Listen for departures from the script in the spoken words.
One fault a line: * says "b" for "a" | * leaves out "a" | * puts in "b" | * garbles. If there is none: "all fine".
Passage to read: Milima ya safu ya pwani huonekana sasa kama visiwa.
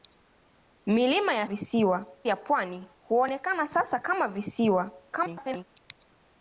* says "visiwa" for "safu"
* garbles